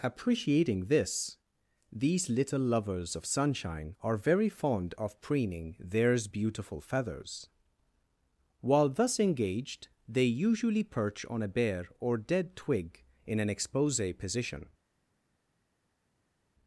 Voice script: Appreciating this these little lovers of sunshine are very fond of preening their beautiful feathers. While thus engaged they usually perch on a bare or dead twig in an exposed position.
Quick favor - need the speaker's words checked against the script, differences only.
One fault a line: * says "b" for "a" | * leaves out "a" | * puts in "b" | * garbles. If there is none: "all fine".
* says "theirs" for "their"
* says "expose" for "exposed"